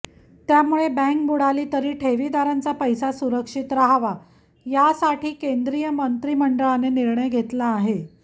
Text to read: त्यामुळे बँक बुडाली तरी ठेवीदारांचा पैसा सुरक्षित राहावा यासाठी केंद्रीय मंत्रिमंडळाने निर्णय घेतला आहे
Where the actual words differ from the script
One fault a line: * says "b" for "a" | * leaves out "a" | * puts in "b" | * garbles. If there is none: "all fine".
all fine